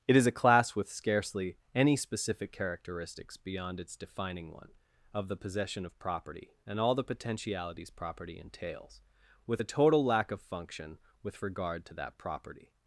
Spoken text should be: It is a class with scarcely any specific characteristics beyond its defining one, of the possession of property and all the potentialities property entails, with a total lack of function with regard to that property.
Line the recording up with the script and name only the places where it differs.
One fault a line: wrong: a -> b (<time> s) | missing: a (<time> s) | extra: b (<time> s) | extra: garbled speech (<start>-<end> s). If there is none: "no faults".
no faults